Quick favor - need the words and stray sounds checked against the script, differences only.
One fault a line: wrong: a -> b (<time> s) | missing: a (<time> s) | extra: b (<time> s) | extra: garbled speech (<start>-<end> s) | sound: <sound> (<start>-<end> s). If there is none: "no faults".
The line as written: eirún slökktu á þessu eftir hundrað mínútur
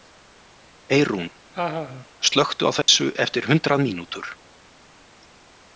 sound: laugh (1.5-2.1 s)
sound: dropout (2.8-2.9 s)